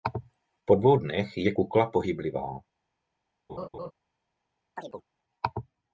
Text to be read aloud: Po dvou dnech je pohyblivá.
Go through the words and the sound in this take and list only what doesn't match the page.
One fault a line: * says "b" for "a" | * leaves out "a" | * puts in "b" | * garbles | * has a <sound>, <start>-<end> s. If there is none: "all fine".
* puts in "kukla"
* has a laugh, 3.5-3.9 s
* has a chirp, 4.8-5.0 s